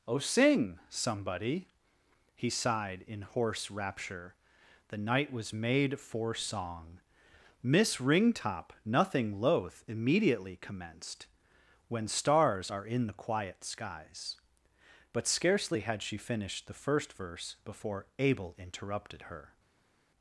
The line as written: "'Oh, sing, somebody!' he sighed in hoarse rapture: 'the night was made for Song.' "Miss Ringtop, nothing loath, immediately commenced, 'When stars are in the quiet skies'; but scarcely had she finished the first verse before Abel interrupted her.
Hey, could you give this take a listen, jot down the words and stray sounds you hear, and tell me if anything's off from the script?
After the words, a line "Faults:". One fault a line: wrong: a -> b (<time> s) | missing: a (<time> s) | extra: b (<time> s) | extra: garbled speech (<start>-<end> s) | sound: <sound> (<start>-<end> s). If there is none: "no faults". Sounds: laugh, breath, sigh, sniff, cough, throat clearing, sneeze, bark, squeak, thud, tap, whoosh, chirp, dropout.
"'Oh, sing, somebody!' he sighed in hoarse rapture: 'the night was made for Song.' "Miss Ringtop, nothing loath, immediately commenced, 'When stars are in the quiet skies'; but scarcely had she finished the first verse before Abel interrupted her.
Faults:
no faults